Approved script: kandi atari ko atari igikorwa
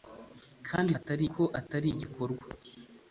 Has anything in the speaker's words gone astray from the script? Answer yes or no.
no